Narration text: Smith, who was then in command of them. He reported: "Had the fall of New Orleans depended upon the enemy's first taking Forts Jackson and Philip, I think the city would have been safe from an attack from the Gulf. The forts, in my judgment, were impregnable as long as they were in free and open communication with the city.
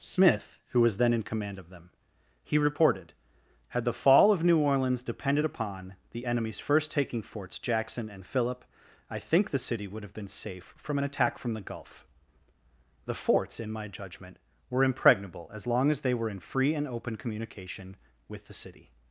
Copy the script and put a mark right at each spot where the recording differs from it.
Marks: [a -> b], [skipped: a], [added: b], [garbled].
Smith, who was then in command of them. He reported: "Had the fall of New Orleans depended upon the enemy's first taking Forts Jackson and Philip, I think the city would have been safe from an attack from the Gulf. The forts, in my judgment, were impregnable as long as they were in free and open communication with the city.